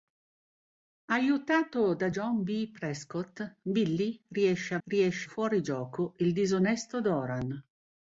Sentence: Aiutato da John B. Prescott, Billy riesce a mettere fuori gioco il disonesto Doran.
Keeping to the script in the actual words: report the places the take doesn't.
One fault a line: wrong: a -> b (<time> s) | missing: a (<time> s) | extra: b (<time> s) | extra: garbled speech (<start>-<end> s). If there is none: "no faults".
wrong: mettere -> riesce (4.9 s)